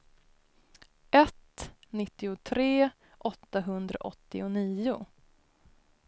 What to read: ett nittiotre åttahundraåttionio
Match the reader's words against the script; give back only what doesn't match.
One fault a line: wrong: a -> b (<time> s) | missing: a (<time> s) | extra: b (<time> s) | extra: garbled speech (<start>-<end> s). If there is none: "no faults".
no faults